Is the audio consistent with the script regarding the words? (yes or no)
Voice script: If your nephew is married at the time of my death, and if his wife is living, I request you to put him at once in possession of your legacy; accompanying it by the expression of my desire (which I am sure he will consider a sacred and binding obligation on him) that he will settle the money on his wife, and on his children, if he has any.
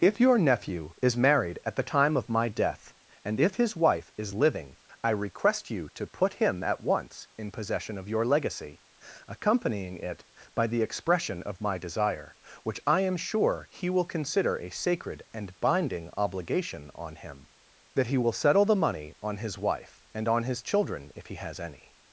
yes